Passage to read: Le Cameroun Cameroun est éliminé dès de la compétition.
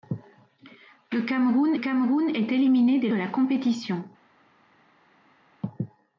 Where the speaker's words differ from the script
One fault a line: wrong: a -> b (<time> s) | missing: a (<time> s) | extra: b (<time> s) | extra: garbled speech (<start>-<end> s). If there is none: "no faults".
no faults